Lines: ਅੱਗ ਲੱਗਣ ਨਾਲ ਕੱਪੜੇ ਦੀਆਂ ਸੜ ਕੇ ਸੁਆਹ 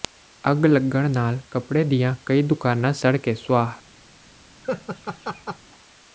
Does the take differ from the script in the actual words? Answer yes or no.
yes